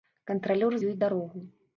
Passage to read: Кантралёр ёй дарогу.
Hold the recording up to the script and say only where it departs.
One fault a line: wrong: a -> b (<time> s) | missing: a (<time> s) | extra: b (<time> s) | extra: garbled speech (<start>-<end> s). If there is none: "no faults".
no faults